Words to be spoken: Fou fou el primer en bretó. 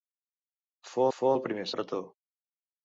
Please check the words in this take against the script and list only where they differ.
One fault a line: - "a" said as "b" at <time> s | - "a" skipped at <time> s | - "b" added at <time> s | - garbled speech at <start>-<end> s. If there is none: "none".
none